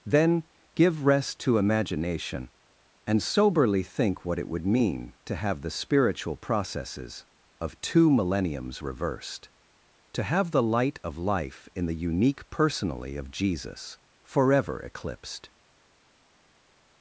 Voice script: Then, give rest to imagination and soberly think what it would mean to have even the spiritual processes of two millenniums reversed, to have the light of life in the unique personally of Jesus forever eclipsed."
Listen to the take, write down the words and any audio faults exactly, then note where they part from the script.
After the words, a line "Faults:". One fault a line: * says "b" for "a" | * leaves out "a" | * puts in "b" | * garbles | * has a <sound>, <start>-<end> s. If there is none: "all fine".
Then, give rest to imagination and soberly think what it would mean to have the spiritual processes of two millenniums reversed, to have the light of life in the unique personally of Jesus forever eclipsed."
Faults:
* leaves out "even"